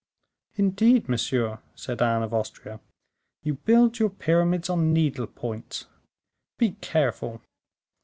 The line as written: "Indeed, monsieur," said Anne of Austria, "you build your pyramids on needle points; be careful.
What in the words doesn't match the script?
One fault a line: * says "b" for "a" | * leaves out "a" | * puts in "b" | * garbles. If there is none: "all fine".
all fine